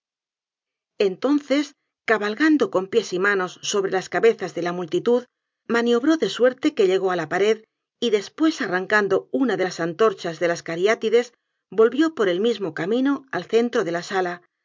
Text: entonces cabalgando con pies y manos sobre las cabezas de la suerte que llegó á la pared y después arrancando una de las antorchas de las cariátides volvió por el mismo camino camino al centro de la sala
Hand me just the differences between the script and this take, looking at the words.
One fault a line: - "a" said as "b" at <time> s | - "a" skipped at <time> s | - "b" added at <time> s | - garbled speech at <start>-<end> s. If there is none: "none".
- "multitud maniobró de" added at 4.7 s
- "camino" skipped at 13.2 s